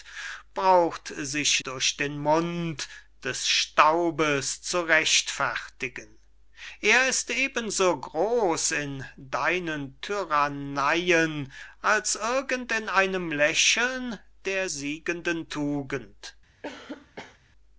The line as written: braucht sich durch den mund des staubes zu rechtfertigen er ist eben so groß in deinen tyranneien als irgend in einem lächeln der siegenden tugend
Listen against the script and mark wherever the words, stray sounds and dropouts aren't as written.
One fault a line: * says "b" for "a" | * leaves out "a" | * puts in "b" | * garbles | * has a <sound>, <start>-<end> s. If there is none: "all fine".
* has a cough, 16.6-17.4 s